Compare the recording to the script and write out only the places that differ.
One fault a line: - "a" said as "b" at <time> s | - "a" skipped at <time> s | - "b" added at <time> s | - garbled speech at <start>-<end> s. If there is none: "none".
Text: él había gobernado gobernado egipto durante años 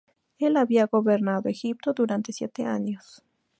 - "gobernado" skipped at 1.5 s
- "siete" added at 2.3 s